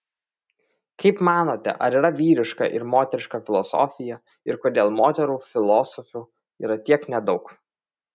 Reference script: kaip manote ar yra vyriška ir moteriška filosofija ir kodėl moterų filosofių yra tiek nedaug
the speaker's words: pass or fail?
pass